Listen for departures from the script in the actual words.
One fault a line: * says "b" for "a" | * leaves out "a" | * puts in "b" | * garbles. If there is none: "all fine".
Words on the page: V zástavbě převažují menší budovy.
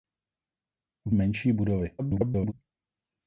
* leaves out "zástavbě převažují"
* garbles